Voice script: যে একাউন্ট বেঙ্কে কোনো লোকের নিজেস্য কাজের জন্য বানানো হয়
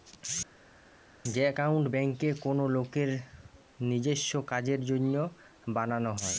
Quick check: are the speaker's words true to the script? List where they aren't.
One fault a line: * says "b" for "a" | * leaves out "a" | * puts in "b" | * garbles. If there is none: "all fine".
all fine